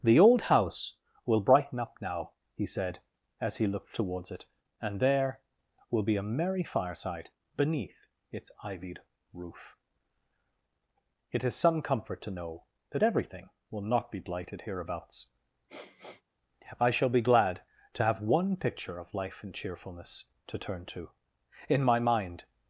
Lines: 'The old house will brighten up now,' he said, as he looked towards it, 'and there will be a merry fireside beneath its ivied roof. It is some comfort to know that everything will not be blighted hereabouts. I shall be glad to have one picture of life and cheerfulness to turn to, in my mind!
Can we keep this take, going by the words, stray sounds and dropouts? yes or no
no